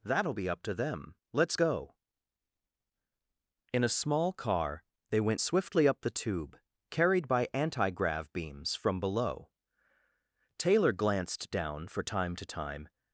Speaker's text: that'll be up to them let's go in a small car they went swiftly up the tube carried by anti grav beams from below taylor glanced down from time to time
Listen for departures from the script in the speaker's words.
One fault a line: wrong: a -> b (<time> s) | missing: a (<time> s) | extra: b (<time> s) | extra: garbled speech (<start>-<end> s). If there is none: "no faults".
wrong: from -> for (11.9 s)